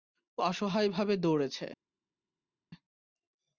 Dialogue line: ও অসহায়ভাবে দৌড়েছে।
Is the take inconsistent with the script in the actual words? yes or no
no